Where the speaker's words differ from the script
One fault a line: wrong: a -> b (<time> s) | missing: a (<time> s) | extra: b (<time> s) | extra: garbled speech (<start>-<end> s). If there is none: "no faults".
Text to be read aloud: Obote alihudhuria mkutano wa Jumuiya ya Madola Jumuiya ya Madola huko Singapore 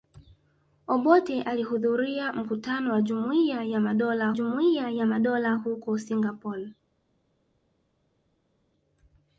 no faults